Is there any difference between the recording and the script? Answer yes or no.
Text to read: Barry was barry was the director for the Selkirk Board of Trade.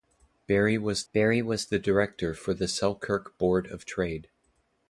no